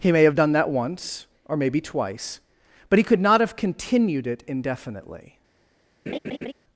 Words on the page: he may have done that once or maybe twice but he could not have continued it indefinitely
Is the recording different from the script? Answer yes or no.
no